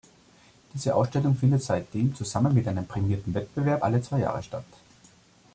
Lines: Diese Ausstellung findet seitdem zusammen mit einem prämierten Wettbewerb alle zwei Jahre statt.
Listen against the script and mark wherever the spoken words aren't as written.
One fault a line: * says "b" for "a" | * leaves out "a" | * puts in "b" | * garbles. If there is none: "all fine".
all fine